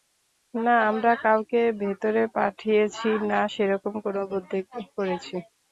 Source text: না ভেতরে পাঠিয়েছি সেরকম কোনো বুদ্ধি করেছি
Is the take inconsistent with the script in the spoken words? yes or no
yes